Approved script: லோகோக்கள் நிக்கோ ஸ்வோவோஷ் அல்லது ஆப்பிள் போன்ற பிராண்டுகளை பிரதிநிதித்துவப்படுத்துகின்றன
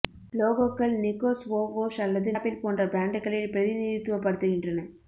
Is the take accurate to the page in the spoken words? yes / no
yes